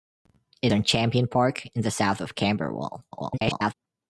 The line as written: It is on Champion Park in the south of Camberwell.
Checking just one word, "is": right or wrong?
wrong